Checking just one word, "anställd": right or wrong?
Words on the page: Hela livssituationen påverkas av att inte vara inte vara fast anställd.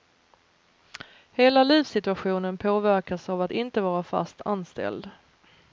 right